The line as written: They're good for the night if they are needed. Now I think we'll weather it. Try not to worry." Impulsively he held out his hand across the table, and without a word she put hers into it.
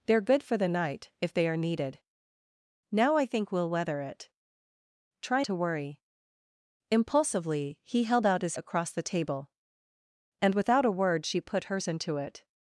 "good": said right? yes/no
yes